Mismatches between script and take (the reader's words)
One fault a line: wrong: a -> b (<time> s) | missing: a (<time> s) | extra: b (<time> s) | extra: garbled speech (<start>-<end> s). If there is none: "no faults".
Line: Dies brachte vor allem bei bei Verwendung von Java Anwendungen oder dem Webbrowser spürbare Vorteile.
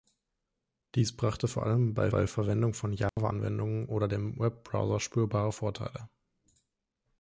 no faults